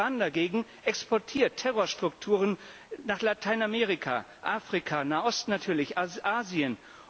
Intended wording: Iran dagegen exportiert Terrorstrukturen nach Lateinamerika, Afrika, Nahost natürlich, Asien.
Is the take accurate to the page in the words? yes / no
yes